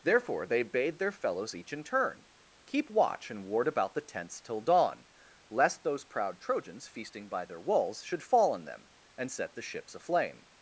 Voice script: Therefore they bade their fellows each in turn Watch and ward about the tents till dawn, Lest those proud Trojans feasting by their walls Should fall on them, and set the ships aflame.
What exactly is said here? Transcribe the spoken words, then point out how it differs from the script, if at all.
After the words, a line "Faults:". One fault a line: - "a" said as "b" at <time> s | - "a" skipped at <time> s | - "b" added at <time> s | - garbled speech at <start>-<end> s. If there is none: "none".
Therefore they bade their fellows each in turn Keep watch and ward about the tents till dawn, Lest those proud Trojans feasting by their walls Should fall on them, and set the ships aflame.
Faults:
- "Keep" added at 2.7 s